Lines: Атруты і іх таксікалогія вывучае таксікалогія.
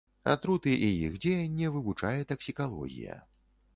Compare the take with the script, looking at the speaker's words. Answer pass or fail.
fail